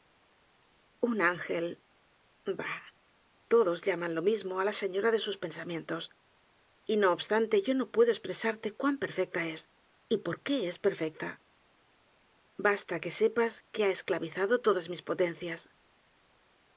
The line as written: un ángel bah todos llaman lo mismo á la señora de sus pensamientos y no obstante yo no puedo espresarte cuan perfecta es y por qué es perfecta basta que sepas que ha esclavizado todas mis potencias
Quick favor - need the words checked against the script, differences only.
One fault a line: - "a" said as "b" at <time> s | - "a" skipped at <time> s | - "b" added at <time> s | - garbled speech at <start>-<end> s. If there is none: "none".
none